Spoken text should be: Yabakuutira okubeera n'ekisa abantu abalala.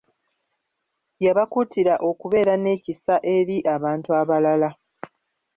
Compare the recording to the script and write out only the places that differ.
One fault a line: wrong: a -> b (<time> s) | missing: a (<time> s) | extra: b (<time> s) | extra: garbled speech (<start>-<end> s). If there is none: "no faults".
extra: eri (3.4 s)